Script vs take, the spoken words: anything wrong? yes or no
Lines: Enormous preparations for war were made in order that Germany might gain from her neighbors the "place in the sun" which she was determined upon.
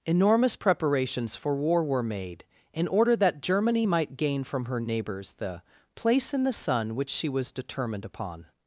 no